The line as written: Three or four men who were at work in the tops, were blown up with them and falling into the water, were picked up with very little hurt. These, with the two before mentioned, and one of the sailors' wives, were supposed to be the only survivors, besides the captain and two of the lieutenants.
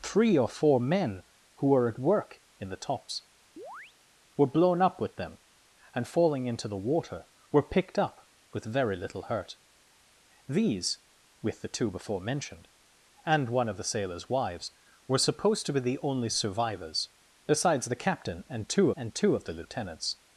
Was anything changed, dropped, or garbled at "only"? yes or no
no